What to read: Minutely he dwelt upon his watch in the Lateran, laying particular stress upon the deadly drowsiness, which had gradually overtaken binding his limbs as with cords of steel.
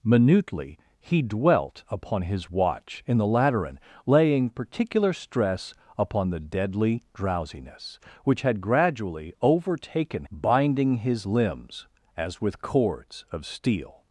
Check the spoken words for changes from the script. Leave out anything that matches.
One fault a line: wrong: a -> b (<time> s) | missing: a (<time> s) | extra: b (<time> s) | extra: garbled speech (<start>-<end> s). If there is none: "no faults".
no faults